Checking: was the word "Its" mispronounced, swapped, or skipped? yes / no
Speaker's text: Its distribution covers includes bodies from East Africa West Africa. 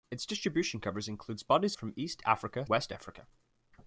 no